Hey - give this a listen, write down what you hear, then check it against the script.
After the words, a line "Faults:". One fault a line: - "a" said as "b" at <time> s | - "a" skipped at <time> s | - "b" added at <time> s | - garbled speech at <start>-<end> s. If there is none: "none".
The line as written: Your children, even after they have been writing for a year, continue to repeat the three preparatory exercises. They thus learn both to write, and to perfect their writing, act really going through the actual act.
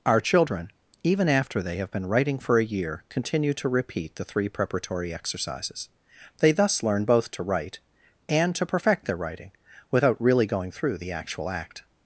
Our children, even after they have been writing for a year, continue to repeat the three preparatory exercises. They thus learn both to write, and to perfect their writing, without really going through the actual act.
Faults:
- "Your" said as "Our" at 0.0 s
- "act" said as "without" at 9.9 s